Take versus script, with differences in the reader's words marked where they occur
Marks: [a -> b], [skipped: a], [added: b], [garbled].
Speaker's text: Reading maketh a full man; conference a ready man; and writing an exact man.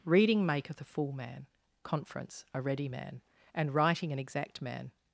Reading maketh a full man; conference a ready man; and writing an exact man.